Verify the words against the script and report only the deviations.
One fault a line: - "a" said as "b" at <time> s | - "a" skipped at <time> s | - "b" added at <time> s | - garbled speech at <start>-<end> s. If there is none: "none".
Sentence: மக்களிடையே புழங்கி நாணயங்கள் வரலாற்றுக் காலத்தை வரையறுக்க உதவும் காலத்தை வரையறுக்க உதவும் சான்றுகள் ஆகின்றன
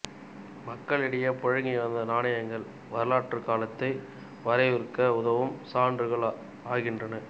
- "வந்த" added at 1.8 s
- "காலத்தை வரையறுக்க உதவும்" skipped at 5.5 s